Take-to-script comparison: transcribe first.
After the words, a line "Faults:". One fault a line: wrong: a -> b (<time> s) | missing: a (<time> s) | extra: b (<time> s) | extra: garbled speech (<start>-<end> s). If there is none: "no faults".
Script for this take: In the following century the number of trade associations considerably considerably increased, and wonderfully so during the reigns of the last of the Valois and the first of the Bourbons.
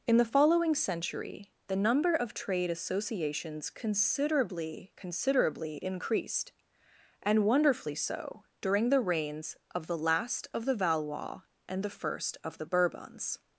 In the following century the number of trade associations considerably considerably increased, and wonderfully so during the reigns of the last of the Valois and the first of the Bourbons.
Faults:
no faults